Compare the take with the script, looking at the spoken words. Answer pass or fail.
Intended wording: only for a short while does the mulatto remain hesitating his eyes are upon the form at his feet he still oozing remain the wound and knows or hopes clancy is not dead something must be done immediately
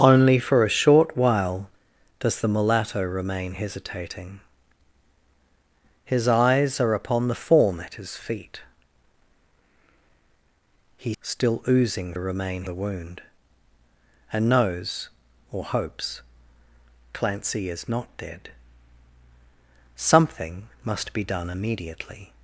pass